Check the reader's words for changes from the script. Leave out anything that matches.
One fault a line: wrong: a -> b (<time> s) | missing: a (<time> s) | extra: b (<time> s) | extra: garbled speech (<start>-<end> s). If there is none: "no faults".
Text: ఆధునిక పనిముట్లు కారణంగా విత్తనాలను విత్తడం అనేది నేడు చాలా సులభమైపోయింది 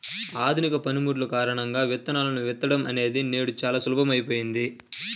no faults